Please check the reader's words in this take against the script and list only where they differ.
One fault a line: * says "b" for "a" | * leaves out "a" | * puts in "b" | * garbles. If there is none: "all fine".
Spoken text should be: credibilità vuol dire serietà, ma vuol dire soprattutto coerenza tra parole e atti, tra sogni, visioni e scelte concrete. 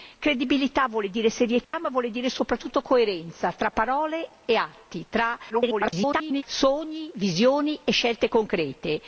* garbles